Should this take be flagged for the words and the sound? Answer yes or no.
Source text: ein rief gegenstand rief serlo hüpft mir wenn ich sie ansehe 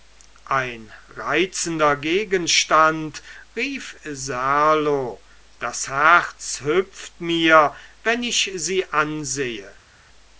yes